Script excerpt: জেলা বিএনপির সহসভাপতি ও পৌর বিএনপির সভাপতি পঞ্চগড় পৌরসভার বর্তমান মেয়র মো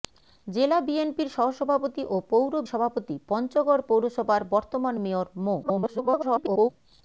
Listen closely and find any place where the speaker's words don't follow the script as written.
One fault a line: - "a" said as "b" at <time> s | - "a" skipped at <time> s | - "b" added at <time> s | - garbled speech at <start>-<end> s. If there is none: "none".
- "বিএনপির" skipped at 2.5 s
- garbled speech at 5.6-6.7 s